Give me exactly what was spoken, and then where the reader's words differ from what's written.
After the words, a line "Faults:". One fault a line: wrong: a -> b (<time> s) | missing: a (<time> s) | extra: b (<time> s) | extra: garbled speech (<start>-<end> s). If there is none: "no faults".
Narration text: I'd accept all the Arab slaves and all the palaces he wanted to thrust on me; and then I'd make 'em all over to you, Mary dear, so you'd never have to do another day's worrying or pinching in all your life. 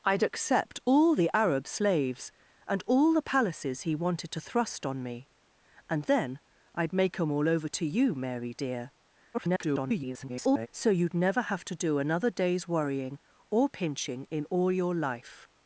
I'd accept all the Arab slaves and all the palaces he wanted to thrust on me; and then I'd make 'em all over to you, Mary dear, [garbled] so you'd never have to do another day's worrying or pinching in all your life.
Faults:
extra: garbled speech (9.3-10.7 s)